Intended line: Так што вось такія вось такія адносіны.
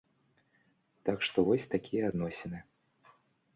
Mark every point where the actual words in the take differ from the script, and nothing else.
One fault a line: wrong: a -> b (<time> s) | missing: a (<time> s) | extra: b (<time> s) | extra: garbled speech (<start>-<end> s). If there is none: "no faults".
missing: вось такія (2.0 s)